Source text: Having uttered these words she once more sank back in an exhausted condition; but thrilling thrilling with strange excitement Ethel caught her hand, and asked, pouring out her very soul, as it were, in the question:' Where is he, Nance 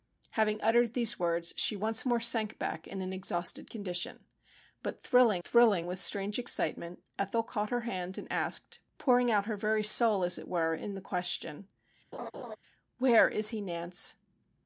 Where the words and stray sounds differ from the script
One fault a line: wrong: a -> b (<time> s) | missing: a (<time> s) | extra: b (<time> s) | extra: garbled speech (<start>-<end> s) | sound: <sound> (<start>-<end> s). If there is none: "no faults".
sound: laugh (12.1-12.6 s)